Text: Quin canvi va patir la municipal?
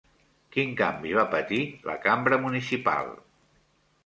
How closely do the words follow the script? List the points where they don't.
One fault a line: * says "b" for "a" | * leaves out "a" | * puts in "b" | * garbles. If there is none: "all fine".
* puts in "cambra"